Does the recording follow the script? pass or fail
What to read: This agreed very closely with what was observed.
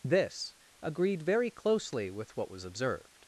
pass